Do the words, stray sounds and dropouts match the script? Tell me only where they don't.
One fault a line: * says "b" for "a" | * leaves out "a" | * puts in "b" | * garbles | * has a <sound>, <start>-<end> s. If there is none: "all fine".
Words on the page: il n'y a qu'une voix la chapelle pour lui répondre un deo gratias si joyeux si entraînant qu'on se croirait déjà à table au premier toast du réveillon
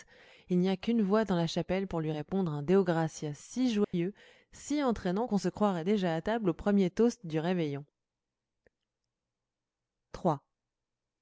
* puts in "dans"
* has a dropout, 3.8-3.9 s